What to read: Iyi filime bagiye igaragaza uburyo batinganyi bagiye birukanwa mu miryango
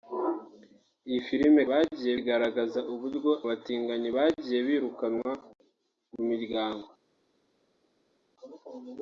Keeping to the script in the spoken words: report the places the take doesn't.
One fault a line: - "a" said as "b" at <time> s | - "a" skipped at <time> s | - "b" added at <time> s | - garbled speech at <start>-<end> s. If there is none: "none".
none